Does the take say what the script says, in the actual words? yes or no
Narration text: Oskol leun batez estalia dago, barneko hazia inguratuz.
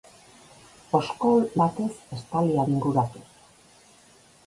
no